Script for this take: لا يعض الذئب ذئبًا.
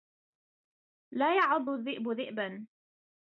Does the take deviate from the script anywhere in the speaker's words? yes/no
no